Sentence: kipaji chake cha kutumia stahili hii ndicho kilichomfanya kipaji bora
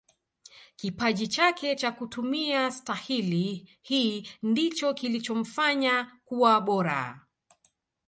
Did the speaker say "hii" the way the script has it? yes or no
yes